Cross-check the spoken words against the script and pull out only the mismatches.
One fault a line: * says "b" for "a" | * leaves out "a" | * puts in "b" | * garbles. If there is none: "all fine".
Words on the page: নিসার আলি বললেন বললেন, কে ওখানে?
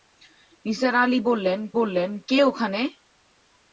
all fine